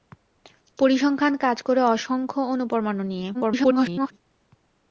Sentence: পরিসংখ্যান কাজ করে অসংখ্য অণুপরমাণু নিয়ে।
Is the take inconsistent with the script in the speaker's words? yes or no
yes